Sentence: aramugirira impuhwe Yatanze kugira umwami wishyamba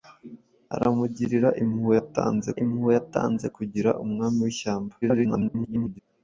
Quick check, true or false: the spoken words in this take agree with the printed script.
false